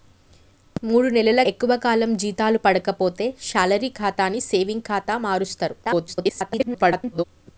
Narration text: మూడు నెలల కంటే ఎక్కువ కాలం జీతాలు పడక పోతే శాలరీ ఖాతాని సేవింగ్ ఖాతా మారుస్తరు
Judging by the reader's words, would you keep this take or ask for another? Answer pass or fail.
fail